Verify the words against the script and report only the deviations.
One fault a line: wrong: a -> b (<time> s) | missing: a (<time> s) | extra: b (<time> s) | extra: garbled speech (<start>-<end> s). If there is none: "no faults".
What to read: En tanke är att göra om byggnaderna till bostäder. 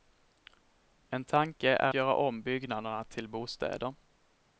missing: att (1.9 s)